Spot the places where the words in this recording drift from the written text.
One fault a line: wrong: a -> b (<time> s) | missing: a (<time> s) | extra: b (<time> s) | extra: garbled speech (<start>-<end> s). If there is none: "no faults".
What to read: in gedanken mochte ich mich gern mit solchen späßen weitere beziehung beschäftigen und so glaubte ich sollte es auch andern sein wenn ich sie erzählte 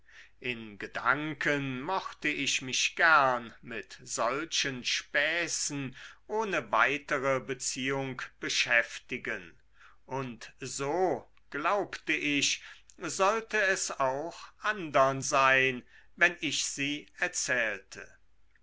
extra: ohne (6.2 s)